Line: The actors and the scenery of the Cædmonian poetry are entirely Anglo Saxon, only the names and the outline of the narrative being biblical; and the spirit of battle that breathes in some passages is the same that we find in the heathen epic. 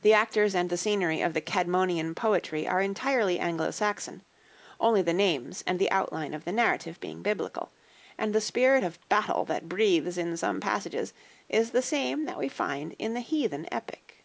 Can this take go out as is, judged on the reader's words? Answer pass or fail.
pass